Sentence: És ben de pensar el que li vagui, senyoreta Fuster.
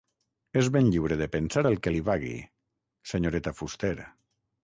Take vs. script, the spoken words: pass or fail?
fail